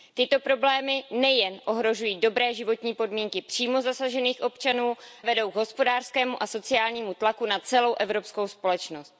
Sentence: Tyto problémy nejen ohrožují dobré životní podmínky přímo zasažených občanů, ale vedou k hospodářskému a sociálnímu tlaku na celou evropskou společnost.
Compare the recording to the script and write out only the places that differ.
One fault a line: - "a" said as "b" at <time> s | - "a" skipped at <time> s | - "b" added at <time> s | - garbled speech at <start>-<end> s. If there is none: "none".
- "ale" skipped at 5.0 s